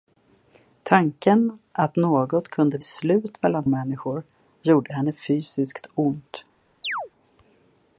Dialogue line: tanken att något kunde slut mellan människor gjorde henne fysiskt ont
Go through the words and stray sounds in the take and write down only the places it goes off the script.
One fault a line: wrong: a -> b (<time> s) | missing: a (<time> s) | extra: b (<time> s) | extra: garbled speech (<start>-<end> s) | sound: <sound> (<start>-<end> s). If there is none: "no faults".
sound: chirp (6.8-7.1 s)